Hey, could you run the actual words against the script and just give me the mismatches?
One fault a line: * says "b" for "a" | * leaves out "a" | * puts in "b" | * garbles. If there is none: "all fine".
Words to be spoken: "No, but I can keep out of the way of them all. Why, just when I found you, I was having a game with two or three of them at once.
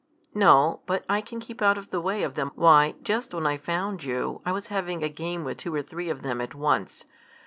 * leaves out "all"